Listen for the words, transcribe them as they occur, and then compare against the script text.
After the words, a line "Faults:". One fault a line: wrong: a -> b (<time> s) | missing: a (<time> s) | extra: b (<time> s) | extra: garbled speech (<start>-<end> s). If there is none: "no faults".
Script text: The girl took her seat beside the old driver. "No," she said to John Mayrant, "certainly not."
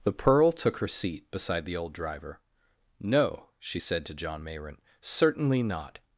The pearl took her seat beside the old driver. "No," she said to John Mayrant, "certainly not."
Faults:
wrong: girl -> pearl (0.1 s)